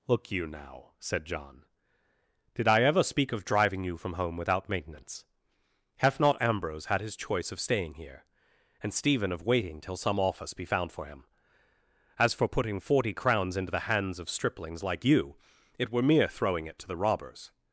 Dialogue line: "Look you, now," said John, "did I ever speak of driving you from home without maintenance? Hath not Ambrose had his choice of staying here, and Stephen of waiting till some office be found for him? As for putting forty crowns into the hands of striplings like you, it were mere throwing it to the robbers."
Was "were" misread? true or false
false